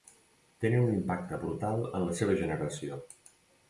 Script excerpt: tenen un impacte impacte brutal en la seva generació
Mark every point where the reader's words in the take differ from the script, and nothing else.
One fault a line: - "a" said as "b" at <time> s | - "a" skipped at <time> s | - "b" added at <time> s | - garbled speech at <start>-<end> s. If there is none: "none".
- "impacte" skipped at 1.4 s